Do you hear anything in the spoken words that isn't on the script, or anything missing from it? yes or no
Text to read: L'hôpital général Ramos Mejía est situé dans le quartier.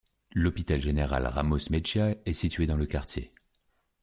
no